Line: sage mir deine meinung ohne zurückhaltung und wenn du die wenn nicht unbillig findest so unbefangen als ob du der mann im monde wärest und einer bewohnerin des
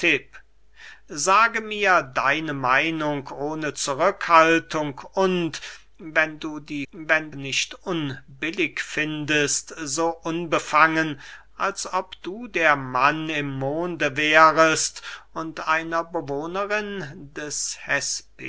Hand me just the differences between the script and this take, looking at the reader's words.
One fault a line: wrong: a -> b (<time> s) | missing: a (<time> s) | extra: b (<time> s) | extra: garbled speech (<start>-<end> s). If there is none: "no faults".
no faults